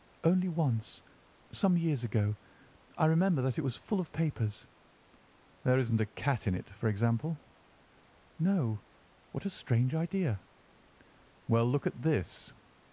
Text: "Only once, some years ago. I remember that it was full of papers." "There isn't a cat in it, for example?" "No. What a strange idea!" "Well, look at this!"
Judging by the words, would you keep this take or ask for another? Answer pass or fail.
pass